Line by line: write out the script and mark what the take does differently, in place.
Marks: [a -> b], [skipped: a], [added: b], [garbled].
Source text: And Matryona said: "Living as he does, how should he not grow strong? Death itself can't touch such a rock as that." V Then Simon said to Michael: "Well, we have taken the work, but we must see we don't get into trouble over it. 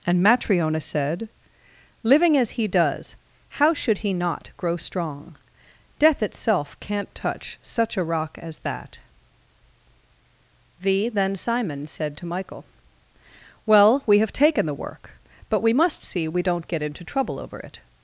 And Matryona said: "Living as he does, how should he not grow strong? Death itself can't touch such a rock as that." V Then Simon said to Michael: "Well, we have taken the work, but we must see we don't get into trouble over it.